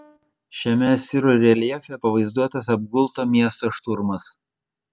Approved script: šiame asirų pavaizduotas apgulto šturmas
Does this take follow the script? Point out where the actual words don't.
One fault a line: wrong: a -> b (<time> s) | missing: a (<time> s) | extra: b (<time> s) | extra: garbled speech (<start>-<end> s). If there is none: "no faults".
extra: reljefe (1.4 s)
extra: miesto (3.3 s)